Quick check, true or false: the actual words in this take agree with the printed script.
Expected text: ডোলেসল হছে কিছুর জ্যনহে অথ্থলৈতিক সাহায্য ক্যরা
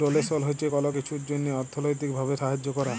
false